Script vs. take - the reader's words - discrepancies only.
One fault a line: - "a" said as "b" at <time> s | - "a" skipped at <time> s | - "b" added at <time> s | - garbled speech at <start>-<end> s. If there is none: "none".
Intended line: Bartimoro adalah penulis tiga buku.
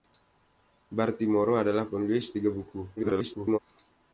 - garbled speech at 3.0-3.6 s